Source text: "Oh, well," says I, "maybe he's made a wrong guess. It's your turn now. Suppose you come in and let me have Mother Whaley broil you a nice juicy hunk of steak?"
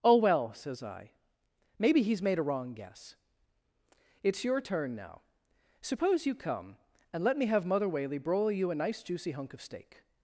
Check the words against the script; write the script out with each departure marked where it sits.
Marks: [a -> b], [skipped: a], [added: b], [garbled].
"Oh, well," says I, "maybe he's made a wrong guess. It's your turn now. Suppose you come [skipped: in] and let me have Mother Whaley broil you a nice juicy hunk of steak?"